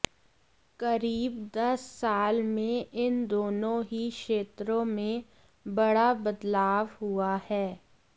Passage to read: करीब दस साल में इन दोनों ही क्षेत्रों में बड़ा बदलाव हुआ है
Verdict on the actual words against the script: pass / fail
pass